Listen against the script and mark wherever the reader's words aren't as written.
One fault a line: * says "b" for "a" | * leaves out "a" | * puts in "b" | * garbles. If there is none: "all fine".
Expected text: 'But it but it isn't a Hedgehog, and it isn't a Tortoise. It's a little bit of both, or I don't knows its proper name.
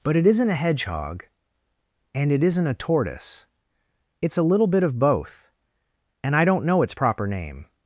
* leaves out "but it"
* says "and" for "or"
* says "know" for "knows"